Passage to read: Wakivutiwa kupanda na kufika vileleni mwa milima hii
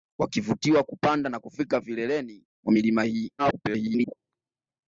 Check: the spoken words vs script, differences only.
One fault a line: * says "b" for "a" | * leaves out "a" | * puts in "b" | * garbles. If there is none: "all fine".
* garbles